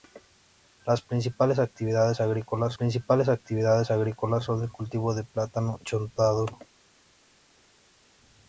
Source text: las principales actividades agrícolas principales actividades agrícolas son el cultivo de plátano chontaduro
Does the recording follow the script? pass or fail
pass